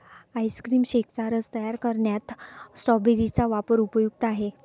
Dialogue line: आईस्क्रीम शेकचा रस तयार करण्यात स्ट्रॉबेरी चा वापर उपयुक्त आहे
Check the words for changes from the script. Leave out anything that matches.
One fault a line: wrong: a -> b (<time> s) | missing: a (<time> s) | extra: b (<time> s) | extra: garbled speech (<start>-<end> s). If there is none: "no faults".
no faults